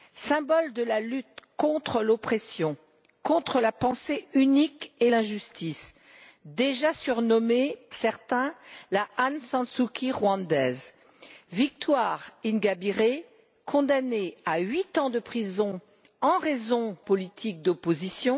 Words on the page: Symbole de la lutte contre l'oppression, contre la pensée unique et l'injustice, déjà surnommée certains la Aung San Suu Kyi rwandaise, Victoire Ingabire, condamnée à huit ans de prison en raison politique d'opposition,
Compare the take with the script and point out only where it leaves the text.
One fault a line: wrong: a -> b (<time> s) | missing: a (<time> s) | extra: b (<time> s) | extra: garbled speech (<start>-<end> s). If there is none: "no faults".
no faults